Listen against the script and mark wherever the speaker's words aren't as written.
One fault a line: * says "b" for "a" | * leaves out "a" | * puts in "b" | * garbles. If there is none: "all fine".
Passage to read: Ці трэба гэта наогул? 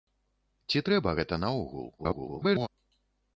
* garbles